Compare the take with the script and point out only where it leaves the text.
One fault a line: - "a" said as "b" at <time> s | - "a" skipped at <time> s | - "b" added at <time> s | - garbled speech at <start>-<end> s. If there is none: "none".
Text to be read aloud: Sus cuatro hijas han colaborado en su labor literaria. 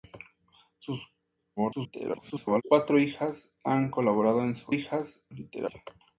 - garbled speech at 1.6-2.6 s
- "labor" said as "hijas" at 4.7 s